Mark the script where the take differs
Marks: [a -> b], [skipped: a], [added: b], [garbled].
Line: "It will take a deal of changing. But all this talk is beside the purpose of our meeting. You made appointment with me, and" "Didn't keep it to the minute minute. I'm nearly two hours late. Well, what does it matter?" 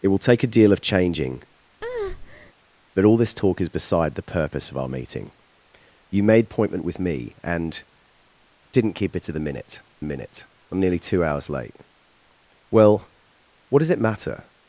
"It will take a deal of changing. But all this talk is beside the purpose of our meeting. You made appointment with me, and" "Didn't keep it to the minute minute. I'm nearly two hours late. Well, what does it matter?"